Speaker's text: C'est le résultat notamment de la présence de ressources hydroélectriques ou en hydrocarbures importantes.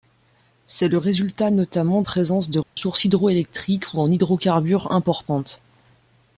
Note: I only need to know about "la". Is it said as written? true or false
false